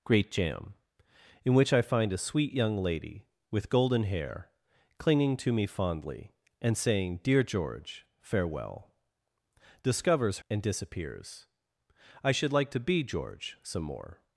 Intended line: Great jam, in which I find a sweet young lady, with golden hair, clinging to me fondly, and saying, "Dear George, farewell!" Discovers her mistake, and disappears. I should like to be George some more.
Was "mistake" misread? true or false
true